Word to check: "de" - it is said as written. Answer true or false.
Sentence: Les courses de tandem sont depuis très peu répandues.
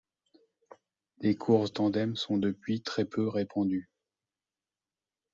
false